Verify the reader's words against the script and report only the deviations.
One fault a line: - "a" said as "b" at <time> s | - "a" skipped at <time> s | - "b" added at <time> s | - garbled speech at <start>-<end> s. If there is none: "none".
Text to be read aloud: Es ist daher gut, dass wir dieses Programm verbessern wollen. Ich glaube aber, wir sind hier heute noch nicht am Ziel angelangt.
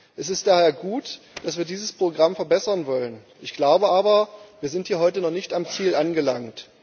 none